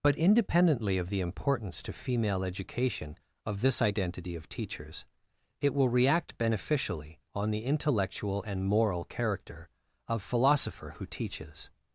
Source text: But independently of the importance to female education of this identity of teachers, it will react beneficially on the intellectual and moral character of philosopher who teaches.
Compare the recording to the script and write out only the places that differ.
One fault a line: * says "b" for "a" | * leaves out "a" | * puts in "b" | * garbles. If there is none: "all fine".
all fine